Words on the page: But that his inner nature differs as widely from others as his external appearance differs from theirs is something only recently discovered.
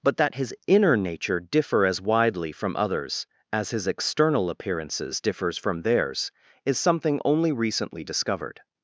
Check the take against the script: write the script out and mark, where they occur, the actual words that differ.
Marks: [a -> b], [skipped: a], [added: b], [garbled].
But that his inner nature [differs -> differ] as widely from others as his external [appearance -> appearances] differs from theirs is something only recently discovered.